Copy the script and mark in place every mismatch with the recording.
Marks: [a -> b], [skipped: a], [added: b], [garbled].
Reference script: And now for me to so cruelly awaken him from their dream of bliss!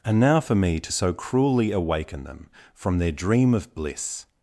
And now for me to so cruelly awaken [him -> them] from their dream of bliss!